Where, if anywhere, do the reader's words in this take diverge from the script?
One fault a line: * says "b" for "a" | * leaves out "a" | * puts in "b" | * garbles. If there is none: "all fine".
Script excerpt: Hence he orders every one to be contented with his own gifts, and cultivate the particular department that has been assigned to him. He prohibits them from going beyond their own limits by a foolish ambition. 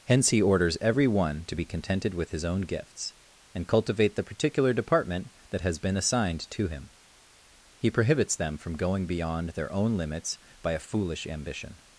all fine